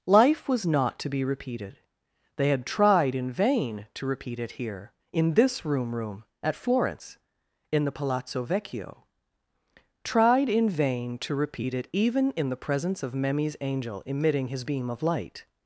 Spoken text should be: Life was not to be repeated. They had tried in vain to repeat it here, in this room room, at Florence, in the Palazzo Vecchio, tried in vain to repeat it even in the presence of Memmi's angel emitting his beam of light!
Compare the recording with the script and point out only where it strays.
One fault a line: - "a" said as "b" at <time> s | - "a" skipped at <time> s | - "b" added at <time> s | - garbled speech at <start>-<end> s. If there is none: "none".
none